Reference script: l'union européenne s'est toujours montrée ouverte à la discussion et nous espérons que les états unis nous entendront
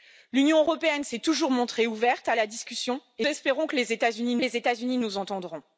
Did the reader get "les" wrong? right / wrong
right